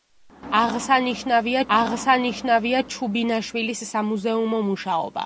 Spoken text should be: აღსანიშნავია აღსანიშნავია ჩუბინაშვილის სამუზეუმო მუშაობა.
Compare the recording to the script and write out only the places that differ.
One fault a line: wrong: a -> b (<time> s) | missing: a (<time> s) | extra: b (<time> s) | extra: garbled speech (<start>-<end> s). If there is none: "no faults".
no faults